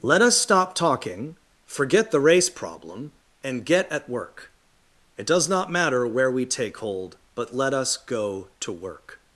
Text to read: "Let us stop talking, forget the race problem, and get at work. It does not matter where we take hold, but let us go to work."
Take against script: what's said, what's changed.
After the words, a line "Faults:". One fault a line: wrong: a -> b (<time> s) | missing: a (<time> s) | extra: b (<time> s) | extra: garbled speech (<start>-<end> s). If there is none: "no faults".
"Let us stop talking, forget the race problem, and get at work. It does not matter where we take hold, but let us go to work."
Faults:
no faults